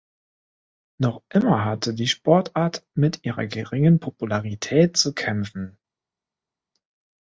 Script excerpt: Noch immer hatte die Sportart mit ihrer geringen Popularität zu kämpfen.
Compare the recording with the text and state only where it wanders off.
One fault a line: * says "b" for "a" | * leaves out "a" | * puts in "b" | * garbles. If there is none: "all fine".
all fine